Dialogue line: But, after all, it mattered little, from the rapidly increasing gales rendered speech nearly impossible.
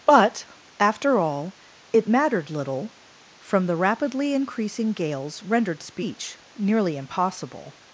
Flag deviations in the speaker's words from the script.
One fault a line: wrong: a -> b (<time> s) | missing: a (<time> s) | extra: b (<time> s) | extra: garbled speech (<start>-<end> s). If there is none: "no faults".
no faults